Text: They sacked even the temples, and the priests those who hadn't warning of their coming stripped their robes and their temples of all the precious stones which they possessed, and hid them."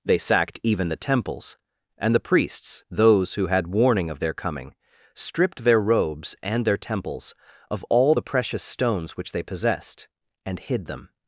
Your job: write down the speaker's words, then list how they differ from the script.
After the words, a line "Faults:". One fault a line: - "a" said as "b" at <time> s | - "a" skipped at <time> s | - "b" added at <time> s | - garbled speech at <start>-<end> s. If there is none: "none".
They sacked even the temples, and the priests those who had warning of their coming stripped their robes and their temples of all the precious stones which they possessed, and hid them."
Faults:
- "hadn't" said as "had" at 3.5 s